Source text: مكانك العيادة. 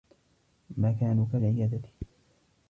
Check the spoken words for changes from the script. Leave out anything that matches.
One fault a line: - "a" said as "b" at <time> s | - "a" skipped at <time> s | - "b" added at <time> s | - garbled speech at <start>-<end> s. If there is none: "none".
none